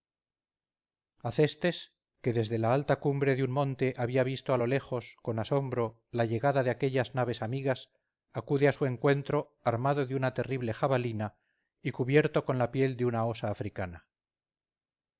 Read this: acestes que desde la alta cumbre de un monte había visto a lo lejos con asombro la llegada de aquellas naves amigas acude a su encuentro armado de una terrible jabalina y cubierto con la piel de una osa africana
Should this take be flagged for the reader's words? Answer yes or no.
no